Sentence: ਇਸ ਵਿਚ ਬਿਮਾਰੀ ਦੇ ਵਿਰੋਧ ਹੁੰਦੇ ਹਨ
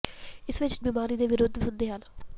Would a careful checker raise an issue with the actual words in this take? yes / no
no